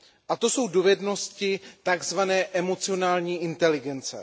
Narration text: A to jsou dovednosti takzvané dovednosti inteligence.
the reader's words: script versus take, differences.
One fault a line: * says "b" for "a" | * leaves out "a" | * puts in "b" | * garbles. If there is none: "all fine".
* says "emocionální" for "dovednosti"